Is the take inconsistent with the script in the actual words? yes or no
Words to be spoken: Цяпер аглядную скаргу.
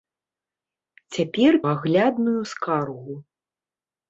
no